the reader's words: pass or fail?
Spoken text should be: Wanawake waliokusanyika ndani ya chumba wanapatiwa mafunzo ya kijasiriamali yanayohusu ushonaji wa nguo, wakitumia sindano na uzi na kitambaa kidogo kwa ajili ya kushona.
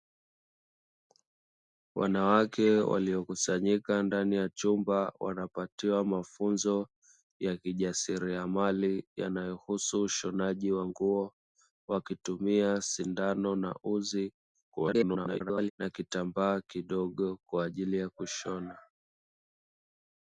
fail